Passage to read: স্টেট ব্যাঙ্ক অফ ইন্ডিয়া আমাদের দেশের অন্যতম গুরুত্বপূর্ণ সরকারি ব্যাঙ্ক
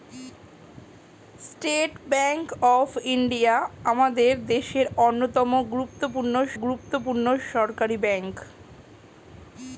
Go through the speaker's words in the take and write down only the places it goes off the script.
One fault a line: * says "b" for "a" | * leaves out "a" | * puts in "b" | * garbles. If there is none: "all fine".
* puts in "গুরুত্বপূর্ণ"